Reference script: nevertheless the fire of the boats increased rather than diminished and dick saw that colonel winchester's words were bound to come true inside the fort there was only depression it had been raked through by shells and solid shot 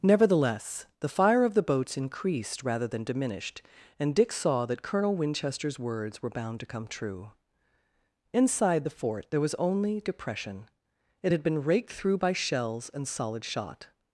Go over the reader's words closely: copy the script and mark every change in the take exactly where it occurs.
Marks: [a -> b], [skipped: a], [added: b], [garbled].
nevertheless the fire of the boats increased rather than diminished and dick saw that colonel winchester's words were bound to come true inside the fort there was only depression it had been raked through by shells and solid shot